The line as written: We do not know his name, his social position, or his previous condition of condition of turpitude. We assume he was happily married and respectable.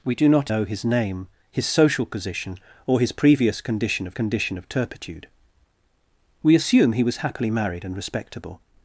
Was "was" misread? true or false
false